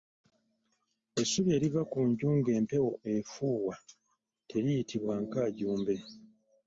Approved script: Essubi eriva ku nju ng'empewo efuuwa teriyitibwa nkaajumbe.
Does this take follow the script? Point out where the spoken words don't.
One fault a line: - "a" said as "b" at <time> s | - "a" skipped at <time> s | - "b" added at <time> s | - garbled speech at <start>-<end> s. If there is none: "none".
none